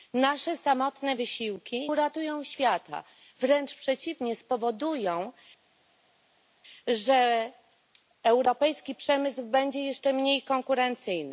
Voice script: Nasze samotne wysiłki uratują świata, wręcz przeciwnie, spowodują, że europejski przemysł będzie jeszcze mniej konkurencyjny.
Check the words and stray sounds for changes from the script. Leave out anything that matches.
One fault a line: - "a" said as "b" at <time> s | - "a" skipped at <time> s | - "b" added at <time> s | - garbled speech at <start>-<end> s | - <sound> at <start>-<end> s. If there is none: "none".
none